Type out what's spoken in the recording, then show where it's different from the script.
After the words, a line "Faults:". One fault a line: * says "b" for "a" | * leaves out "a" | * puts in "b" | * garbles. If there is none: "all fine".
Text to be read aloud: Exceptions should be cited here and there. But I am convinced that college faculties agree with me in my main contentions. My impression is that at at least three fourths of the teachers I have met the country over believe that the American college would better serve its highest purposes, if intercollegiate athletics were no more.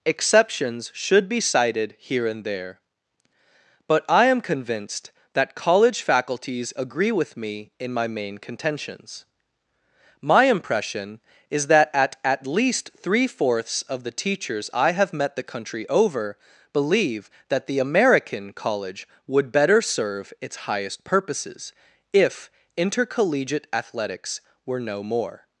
Exceptions should be cited here and there. But I am convinced that college faculties agree with me in my main contentions. My impression is that at at least three fourths of the teachers I have met the country over believe that the American college would better serve its highest purposes, if intercollegiate athletics were no more.
Faults:
all fine